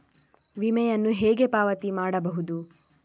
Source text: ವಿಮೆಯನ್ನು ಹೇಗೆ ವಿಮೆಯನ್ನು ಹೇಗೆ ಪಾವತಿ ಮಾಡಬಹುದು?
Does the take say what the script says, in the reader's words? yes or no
no